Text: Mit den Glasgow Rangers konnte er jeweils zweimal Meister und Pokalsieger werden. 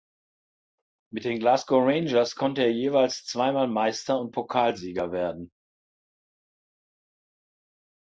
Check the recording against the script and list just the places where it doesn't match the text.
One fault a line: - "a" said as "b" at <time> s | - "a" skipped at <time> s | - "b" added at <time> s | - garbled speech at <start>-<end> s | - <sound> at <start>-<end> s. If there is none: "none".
none